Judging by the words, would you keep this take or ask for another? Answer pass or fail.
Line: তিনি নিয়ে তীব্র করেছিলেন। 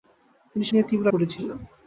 pass